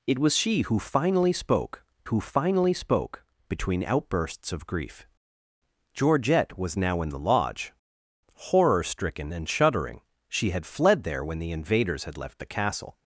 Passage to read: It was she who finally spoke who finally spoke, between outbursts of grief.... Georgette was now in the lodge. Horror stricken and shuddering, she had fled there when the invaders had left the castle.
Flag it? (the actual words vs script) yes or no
no